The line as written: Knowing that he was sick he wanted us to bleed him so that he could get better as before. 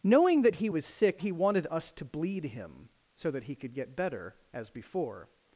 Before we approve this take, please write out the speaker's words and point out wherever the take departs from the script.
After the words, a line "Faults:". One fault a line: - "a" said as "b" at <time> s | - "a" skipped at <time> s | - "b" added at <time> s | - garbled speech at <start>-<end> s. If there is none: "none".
Knowing that he was sick he wanted us to bleed him so that he could get better as before.
Faults:
none